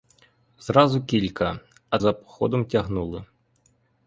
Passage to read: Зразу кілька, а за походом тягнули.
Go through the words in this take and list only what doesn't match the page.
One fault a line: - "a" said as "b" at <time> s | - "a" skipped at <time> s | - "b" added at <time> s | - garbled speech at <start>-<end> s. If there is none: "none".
none